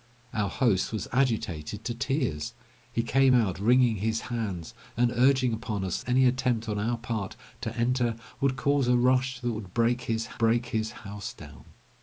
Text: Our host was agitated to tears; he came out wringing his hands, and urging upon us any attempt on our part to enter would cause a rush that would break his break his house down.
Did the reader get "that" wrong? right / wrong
right